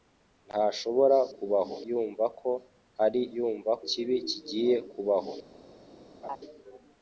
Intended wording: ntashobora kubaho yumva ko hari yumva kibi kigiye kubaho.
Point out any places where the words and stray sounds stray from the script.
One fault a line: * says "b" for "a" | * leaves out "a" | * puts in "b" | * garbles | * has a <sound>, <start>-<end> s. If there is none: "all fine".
* has a laugh, 6.2-6.4 s